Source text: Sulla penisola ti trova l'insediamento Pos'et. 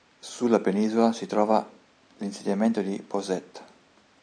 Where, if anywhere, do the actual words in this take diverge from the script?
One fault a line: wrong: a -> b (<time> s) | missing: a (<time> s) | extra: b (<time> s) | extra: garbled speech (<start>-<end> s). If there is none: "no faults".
wrong: ti -> si (1.1 s)
extra: di (2.8 s)